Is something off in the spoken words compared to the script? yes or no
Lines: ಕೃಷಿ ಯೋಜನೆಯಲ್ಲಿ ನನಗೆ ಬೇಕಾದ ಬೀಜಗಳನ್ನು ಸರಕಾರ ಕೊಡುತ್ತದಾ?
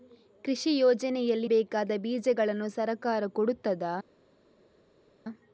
yes